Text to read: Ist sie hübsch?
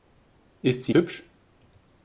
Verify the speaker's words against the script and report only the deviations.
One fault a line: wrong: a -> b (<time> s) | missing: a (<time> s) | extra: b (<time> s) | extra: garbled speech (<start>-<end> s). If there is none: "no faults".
no faults